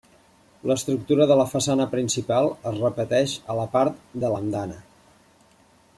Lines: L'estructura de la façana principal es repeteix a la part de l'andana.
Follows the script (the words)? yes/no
yes